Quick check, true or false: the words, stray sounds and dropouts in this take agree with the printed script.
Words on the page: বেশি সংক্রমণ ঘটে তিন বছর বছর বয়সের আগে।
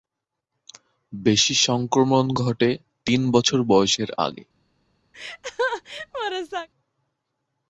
false